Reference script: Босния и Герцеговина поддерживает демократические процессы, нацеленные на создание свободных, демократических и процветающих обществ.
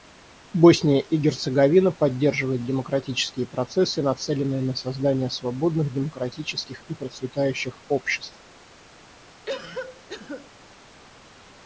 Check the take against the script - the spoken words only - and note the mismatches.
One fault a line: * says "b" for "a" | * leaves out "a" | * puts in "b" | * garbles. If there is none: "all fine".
all fine